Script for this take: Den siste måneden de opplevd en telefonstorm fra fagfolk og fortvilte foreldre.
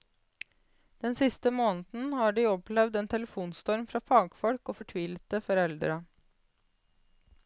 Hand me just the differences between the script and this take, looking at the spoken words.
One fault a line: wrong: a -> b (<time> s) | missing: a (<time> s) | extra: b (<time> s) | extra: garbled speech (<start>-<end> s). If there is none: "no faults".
extra: har (2.2 s)